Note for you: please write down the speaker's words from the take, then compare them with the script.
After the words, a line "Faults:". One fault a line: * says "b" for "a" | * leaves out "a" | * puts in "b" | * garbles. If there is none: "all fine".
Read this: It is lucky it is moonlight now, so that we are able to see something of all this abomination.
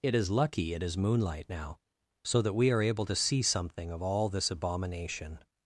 It is lucky it is moonlight now, so that we are able to see something of all this abomination.
Faults:
all fine